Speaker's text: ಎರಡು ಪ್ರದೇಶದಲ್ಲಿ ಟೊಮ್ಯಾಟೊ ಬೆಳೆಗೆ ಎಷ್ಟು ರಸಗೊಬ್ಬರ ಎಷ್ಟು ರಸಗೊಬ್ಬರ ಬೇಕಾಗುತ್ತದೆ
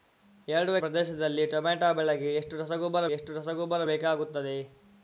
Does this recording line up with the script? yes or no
yes